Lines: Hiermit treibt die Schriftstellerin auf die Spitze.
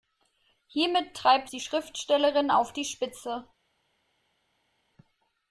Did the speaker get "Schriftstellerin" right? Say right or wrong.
right